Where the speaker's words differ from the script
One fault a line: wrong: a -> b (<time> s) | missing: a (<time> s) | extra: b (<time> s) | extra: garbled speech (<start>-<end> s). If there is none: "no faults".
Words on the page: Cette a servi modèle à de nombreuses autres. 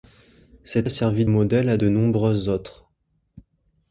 no faults